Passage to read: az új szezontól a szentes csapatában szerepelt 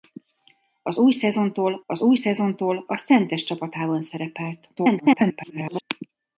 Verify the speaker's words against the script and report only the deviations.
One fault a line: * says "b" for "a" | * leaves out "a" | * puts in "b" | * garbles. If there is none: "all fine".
* puts in "az új szezontól"
* garbles